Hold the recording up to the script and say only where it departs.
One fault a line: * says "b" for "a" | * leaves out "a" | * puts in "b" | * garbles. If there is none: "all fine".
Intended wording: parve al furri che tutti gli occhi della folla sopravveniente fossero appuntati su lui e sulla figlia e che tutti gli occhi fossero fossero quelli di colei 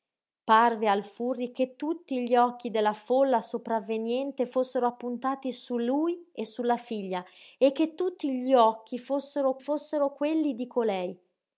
all fine